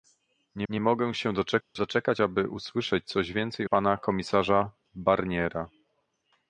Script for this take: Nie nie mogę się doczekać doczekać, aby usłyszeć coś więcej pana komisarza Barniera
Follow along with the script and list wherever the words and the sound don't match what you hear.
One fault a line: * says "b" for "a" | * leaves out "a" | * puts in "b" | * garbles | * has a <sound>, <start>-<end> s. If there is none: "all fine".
* has a dropout, 1.6-1.8 s